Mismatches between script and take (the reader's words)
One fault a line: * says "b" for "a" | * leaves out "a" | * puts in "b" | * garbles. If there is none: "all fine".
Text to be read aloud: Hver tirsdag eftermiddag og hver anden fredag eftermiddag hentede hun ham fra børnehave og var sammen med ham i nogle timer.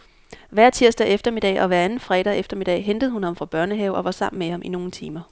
all fine